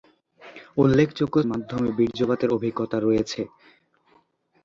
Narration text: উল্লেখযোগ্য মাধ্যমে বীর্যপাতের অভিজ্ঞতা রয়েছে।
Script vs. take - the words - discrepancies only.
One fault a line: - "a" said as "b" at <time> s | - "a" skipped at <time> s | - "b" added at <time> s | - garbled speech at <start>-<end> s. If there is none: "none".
none